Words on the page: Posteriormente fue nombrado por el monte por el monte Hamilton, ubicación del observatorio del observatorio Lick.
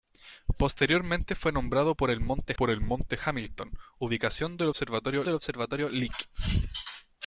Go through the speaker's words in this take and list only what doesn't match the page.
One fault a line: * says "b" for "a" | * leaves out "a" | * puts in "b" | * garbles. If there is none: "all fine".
all fine